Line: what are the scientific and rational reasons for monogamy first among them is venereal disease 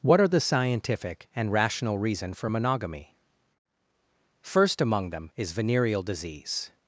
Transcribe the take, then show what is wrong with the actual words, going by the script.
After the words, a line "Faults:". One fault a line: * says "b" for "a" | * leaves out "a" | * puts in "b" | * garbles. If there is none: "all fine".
what are the scientific and rational reason for monogamy first among them is venereal disease
Faults:
* says "reason" for "reasons"